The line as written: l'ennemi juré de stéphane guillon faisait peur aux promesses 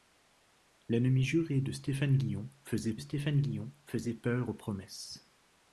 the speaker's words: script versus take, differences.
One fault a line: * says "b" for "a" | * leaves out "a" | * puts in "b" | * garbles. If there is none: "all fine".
* puts in "stéphane guillon faisait"